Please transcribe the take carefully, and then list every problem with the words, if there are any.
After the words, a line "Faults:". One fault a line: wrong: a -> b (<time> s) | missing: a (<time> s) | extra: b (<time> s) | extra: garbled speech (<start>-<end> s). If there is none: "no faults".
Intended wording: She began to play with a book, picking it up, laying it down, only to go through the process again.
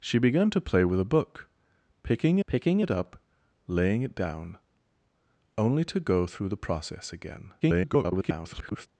She began to play with a book, picking picking it up, laying it down, only to go through the process again. [garbled]
Faults:
extra: picking (2.4 s)
extra: garbled speech (7.6-8.9 s)